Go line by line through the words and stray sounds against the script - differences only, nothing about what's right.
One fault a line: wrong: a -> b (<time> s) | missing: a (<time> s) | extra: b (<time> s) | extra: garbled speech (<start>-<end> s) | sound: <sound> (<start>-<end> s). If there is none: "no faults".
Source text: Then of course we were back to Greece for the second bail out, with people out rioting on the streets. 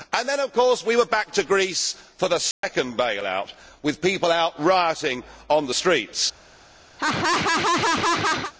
sound: dropout (2.5-2.6 s)
sound: laugh (7.0-8.5 s)